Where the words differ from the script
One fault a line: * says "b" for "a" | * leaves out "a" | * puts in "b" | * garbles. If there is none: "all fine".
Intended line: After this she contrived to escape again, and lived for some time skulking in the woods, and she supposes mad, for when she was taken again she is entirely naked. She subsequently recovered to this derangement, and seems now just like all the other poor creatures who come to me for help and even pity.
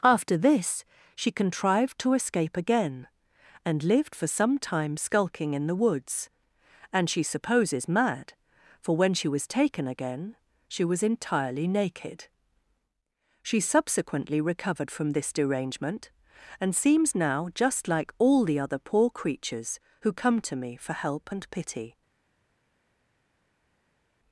* says "was" for "is"
* says "from" for "to"
* leaves out "even"